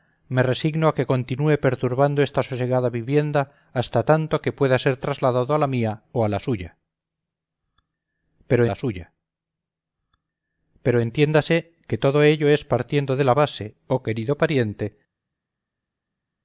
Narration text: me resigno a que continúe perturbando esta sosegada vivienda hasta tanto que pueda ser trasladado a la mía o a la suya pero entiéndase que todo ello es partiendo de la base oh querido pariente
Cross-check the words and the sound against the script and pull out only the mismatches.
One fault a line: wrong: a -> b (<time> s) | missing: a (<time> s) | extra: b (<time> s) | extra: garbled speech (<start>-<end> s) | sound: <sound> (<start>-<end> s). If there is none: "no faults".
extra: la suya pero (8.7 s)